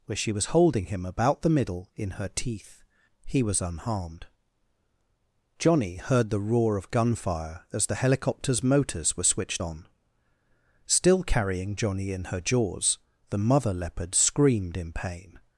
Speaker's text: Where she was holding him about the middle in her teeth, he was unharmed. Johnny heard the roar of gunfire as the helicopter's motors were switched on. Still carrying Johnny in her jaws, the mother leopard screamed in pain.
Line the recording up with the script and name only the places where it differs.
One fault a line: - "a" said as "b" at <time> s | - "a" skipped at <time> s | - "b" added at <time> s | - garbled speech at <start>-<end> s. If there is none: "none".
none